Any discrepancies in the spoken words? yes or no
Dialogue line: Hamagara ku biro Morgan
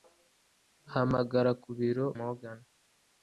no